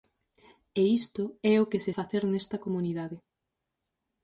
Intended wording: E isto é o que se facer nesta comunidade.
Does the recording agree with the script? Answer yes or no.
yes